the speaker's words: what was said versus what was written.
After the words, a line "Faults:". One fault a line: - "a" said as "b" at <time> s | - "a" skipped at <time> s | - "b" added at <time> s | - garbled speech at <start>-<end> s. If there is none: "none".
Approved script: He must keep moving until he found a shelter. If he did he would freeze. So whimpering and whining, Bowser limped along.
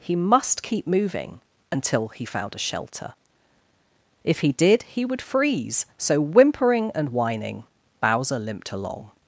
He must keep moving until he found a shelter. If he did he would freeze. So whimpering and whining, Bowser limped along.
Faults:
none